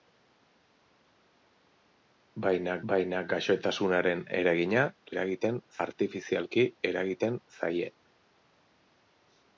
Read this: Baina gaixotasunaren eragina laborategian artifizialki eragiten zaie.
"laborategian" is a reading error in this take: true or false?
true